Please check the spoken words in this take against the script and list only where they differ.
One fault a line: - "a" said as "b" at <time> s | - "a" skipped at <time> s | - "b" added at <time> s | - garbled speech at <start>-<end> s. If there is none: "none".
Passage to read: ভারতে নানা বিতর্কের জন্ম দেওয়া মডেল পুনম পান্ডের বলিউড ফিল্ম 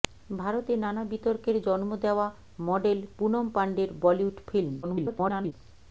- garbled speech at 4.8-5.5 s